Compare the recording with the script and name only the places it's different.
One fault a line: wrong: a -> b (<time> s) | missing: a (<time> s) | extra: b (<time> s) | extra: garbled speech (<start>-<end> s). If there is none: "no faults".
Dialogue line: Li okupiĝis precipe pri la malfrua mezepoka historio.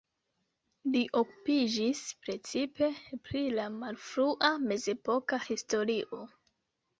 no faults